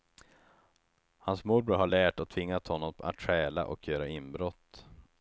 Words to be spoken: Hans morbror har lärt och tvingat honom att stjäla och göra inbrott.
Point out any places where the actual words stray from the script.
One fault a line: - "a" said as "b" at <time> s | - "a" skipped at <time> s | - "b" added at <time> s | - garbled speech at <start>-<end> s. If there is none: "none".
none